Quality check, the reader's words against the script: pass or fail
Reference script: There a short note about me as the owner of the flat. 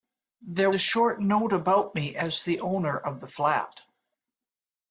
pass